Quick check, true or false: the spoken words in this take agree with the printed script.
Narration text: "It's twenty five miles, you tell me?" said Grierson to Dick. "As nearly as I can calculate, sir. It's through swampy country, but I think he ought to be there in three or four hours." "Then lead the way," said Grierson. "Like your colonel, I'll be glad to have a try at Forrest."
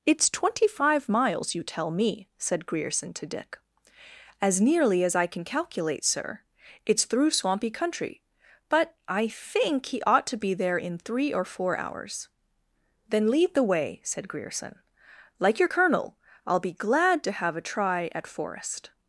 true